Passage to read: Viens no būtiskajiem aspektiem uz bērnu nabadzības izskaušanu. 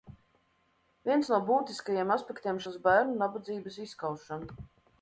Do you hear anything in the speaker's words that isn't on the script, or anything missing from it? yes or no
no